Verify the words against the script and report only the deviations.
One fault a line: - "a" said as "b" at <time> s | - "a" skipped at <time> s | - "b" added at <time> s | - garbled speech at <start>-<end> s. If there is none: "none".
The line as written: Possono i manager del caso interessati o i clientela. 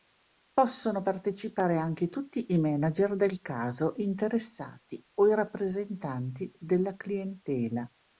- "partecipare anche tutti" added at 1.0 s
- "rappresentanti della" added at 5.3 s